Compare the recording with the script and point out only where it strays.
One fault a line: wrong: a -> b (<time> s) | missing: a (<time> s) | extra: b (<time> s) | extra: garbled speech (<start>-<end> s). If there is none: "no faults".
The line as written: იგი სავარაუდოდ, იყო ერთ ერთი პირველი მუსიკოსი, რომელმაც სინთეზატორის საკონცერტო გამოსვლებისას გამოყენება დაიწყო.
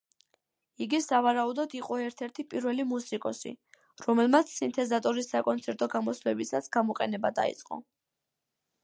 no faults